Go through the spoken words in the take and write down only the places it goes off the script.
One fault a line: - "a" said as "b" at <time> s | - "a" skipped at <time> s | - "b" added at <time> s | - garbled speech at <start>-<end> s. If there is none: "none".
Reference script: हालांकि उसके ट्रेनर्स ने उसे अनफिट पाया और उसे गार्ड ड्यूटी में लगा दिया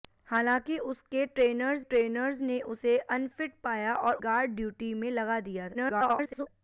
- "ट्रेनर्स" added at 1.8 s
- "उसे" skipped at 4.1 s
- garbled speech at 5.7-6.5 s